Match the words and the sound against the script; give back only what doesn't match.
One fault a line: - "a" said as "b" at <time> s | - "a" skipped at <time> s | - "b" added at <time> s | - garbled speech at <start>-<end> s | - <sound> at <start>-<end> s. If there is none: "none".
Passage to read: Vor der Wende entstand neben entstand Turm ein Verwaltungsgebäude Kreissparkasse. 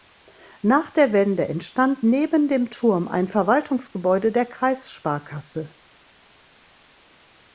- "Vor" said as "Nach" at 0.6 s
- "entstand" said as "dem" at 2.5 s
- "der" added at 4.3 s